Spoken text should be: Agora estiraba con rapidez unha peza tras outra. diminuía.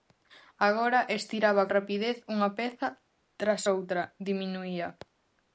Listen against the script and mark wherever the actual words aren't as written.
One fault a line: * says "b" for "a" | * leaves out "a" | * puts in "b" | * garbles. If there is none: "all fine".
* leaves out "con"